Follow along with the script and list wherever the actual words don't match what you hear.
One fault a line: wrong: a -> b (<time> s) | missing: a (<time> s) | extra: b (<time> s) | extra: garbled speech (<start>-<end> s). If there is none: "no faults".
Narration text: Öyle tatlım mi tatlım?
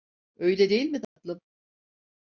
wrong: tatlım -> değil (0.7 s)